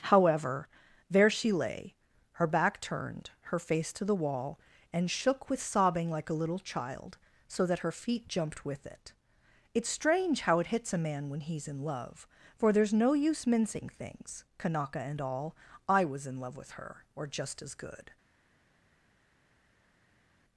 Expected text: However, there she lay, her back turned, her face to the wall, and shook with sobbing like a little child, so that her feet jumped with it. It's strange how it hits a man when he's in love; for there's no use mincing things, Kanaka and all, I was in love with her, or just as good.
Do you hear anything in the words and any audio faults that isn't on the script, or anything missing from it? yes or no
no